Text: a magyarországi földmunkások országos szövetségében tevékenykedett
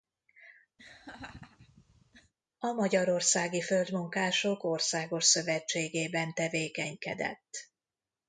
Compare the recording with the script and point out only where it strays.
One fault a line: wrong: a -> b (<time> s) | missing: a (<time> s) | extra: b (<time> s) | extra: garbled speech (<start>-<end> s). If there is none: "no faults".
no faults